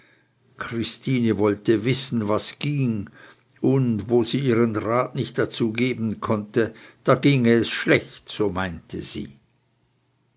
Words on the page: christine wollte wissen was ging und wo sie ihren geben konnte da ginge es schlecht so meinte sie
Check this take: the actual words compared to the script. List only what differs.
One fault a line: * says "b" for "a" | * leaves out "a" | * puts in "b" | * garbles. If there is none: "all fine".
* puts in "rat nicht dazu"